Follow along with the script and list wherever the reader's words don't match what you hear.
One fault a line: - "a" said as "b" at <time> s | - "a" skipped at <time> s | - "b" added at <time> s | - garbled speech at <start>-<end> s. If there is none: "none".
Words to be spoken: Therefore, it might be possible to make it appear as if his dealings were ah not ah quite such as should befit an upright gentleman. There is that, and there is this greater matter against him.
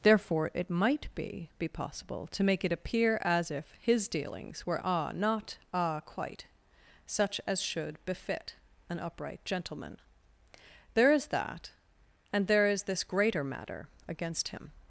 - "be" added at 1.6 s